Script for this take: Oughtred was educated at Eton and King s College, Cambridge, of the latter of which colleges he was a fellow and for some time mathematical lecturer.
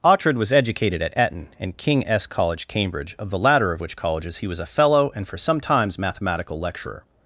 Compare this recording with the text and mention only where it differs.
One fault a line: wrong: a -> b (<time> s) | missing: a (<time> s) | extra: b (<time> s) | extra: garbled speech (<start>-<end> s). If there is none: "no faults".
wrong: time -> times (5.6 s)